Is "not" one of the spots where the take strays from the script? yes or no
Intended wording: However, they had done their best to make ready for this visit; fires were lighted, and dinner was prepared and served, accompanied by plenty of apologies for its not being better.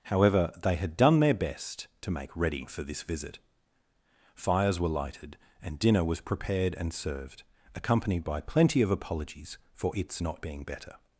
no